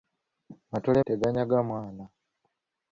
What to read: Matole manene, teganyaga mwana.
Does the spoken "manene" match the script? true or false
false